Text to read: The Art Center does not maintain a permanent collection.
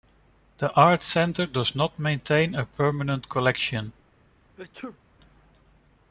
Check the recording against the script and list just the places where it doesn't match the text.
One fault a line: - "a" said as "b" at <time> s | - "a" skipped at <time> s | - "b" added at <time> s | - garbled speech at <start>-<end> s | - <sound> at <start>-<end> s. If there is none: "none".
- sneeze at 4.6-5.0 s